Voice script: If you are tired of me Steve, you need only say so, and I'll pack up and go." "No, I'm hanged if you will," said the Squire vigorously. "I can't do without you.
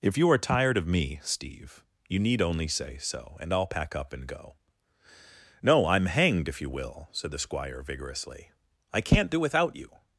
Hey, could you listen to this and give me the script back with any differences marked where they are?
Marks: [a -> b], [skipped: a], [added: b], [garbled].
If you are tired of me Steve, you need only say so, and I'll pack up and go." "No, I'm hanged if you will," said the Squire vigorously. "I can't do without you.